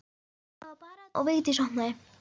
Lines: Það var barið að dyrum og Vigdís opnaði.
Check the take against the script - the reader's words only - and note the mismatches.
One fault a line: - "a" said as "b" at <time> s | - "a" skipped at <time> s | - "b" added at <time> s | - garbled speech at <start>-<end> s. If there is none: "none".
- "dyrum" skipped at 1.1 s